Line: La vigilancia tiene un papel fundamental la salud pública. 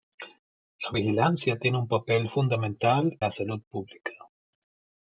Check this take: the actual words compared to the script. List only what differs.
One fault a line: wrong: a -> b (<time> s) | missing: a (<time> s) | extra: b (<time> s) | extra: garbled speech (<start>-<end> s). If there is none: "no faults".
no faults